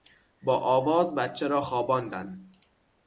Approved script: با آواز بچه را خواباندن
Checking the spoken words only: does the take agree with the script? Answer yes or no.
yes